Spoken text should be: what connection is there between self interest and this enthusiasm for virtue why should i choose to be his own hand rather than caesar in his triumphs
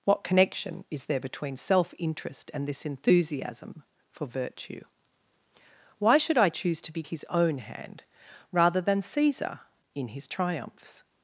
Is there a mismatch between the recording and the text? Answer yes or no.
no